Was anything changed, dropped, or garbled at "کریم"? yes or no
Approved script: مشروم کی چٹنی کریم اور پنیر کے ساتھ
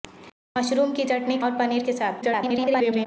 yes